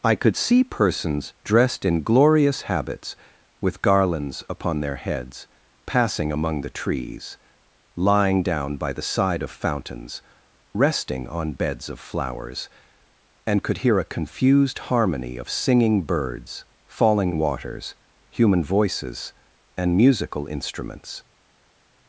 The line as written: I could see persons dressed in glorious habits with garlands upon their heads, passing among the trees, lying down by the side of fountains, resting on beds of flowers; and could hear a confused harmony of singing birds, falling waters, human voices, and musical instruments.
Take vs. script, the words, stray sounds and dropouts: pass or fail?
pass